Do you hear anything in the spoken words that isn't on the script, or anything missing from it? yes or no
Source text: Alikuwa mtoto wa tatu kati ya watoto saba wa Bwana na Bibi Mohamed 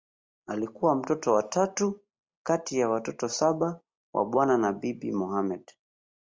no